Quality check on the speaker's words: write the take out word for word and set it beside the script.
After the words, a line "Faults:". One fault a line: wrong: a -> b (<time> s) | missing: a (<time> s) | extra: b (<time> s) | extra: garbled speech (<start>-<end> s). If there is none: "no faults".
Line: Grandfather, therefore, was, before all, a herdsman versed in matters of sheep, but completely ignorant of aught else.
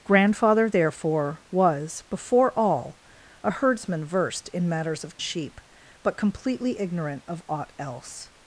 Grandfather, therefore, was, before all, a herdsman versed in matters of sheep, but completely ignorant of aught else.
Faults:
no faults